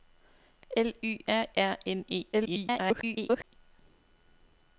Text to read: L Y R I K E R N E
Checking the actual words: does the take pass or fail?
fail